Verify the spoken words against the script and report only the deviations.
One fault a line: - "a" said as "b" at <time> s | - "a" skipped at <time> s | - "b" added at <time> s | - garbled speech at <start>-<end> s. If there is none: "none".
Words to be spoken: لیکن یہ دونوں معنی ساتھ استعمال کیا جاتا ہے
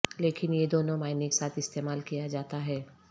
none